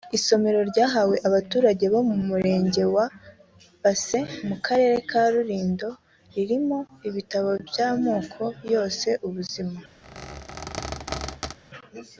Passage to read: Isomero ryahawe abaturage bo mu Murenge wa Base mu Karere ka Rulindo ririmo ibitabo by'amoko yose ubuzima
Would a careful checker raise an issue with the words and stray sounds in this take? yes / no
yes